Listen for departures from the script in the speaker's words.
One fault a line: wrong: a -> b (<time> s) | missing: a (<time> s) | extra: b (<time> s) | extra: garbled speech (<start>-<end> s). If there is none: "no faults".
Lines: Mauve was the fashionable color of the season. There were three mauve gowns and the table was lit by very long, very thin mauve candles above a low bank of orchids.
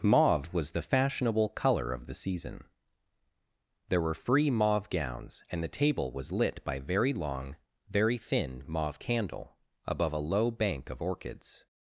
wrong: three -> free (4.1 s)
wrong: candles -> candle (9.0 s)